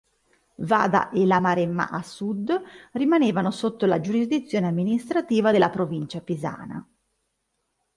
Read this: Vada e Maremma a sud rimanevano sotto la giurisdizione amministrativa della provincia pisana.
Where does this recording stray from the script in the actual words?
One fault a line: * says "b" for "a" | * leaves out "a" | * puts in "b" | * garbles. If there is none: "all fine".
* puts in "la"